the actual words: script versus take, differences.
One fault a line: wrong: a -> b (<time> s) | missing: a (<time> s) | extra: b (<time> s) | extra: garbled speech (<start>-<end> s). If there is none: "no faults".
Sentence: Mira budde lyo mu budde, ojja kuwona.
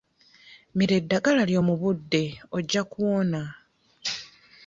wrong: budde -> eddagala (1.0 s)